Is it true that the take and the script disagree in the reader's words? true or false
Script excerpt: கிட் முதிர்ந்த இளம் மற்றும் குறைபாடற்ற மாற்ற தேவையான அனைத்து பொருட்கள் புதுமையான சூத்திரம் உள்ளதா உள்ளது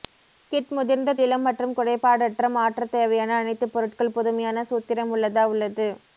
false